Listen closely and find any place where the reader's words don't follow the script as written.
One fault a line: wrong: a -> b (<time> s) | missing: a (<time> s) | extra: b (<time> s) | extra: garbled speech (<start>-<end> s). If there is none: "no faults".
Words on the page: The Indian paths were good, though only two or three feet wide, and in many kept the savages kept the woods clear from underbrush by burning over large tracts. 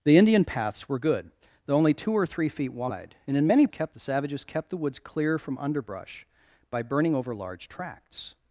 no faults